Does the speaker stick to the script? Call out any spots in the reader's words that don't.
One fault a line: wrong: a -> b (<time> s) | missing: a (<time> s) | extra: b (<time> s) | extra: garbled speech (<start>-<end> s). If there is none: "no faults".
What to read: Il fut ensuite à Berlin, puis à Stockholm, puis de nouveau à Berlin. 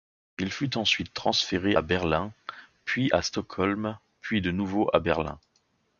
extra: transféré (1.1 s)